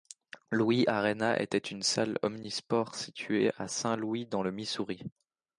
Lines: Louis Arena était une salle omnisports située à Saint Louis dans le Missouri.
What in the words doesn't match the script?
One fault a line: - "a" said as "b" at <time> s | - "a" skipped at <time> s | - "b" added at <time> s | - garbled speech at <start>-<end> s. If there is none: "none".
none